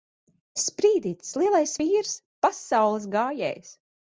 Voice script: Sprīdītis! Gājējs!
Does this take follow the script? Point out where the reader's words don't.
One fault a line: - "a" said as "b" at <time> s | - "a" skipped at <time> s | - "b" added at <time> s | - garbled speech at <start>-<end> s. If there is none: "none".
- "Lielais vīrs Pasaules" added at 1.4 s